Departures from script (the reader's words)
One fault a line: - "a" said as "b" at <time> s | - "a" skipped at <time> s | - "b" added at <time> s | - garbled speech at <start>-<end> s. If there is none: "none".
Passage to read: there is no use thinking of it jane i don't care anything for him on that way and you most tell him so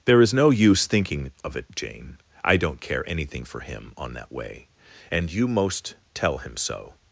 none